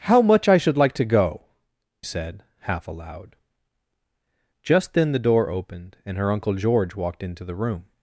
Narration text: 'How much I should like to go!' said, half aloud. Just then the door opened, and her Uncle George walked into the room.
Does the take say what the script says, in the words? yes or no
yes